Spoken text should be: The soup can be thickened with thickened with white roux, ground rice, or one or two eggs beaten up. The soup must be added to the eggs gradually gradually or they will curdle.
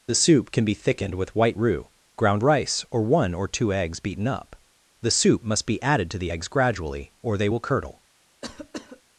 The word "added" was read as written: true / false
true